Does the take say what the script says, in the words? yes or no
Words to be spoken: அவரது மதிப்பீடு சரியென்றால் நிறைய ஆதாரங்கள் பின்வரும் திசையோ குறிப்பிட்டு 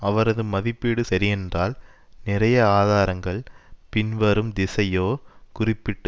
yes